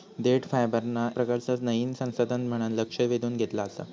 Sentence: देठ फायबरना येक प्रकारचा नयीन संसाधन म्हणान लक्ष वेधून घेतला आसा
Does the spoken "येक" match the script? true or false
false